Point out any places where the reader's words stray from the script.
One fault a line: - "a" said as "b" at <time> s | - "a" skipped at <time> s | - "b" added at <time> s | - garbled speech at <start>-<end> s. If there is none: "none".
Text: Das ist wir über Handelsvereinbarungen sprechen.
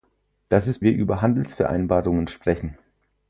none